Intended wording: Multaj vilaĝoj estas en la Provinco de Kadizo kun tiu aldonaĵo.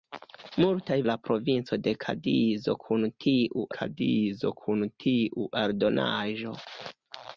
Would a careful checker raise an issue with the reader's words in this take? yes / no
yes